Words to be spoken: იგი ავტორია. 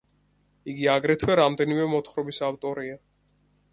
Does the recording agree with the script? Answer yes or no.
no